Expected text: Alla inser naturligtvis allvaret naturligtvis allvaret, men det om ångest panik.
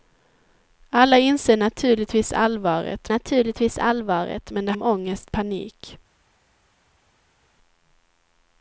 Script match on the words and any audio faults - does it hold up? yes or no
yes